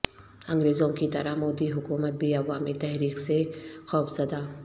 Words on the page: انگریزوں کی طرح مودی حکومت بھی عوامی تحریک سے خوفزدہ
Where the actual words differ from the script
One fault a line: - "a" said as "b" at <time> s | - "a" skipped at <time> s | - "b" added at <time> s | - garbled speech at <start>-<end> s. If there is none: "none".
none